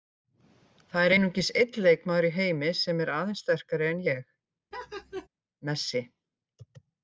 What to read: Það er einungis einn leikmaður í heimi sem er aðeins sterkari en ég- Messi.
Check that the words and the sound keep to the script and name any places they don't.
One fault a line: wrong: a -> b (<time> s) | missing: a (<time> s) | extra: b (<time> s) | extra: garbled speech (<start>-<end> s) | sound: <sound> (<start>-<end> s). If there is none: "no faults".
sound: laugh (4.7-5.3 s)